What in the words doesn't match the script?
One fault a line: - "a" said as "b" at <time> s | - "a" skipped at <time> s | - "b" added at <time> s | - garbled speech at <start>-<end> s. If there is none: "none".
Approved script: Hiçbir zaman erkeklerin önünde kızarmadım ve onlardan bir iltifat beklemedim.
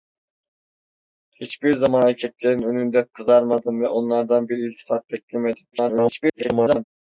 - garbled speech at 5.7-6.8 s